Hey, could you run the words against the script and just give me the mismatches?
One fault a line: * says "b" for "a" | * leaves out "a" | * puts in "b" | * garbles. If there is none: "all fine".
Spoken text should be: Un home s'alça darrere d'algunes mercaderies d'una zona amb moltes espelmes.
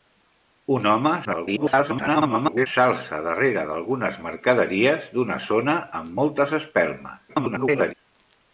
* garbles
* garbles